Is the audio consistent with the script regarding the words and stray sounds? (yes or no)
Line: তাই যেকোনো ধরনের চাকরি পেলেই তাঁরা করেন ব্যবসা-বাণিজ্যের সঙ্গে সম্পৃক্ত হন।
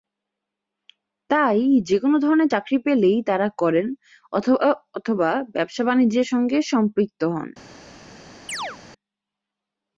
no